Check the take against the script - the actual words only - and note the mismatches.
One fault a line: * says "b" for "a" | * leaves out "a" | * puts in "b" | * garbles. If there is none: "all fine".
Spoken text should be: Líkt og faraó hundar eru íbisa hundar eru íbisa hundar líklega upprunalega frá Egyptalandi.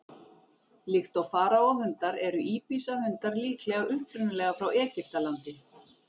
* leaves out "eru íbisa hundar"